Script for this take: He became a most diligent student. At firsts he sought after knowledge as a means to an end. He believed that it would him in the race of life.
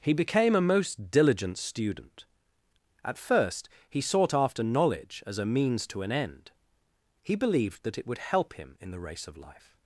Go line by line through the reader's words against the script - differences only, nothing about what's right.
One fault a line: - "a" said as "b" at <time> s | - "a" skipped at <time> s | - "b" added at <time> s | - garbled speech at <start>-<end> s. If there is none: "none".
- "firsts" said as "first" at 3.2 s
- "help" added at 8.2 s